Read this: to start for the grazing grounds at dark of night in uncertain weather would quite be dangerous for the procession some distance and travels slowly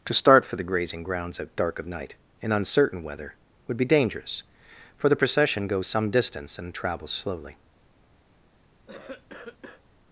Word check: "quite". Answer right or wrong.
wrong